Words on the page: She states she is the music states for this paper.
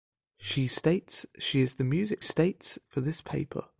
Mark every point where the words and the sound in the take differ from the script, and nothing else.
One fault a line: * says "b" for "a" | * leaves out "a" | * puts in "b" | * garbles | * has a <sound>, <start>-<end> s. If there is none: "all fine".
all fine